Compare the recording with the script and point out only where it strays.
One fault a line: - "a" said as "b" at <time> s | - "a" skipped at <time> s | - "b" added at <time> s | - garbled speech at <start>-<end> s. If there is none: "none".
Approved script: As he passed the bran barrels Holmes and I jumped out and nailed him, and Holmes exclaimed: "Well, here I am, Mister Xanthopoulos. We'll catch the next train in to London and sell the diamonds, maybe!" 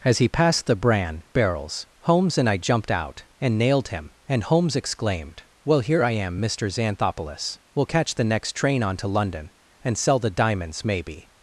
- "in" said as "on" at 8.8 s